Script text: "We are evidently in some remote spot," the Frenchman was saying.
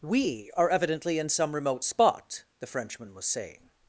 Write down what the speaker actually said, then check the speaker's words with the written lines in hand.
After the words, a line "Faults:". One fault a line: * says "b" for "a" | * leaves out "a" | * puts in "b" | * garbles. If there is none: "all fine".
"We are evidently in some remote spot," the Frenchman was saying.
Faults:
all fine